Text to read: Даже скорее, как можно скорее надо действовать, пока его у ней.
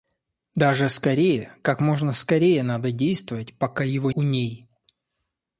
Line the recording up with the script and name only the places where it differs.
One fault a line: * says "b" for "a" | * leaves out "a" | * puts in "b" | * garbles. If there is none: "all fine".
all fine